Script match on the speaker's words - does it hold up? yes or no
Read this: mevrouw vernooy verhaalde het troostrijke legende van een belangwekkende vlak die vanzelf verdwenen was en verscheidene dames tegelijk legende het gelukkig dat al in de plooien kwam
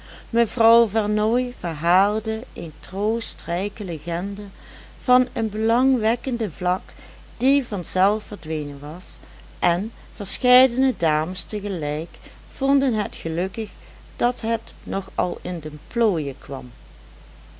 no